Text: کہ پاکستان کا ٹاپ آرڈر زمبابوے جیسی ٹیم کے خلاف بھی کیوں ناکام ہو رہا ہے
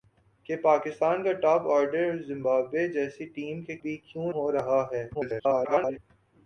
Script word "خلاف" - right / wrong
wrong